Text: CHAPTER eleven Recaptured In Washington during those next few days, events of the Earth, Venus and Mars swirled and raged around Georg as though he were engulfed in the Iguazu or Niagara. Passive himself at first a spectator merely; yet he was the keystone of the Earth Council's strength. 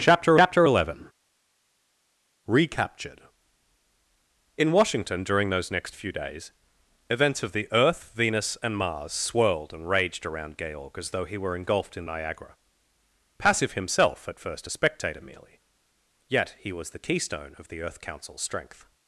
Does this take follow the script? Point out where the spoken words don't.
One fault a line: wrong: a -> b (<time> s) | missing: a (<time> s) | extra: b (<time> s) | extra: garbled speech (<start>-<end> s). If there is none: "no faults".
extra: chapter (0.3 s)
missing: the Iguazu or (12.0 s)